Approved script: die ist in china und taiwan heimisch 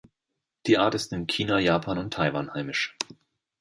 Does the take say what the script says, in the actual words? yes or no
no